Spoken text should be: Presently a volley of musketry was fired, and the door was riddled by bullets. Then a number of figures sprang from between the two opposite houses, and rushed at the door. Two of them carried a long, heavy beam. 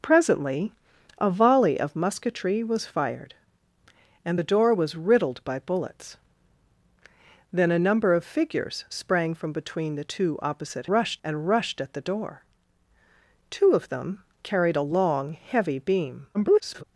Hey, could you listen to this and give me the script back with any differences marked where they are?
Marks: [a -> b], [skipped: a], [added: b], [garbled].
Presently a volley of musketry was fired, and the door was riddled by bullets. Then a number of figures sprang from between the two opposite [houses, -> rushed] and rushed at the door. Two of them carried a long, heavy beam. [garbled]